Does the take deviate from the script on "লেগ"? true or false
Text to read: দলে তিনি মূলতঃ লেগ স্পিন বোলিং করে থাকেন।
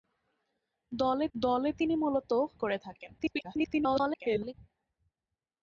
true